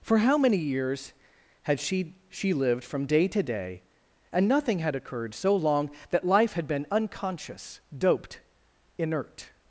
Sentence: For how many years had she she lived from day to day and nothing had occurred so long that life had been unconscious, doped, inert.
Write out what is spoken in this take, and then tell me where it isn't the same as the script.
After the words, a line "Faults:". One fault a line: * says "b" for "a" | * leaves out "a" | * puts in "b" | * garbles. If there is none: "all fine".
For how many years had she she lived from day to day and nothing had occurred so long that life had been unconscious, doped, inert.
Faults:
all fine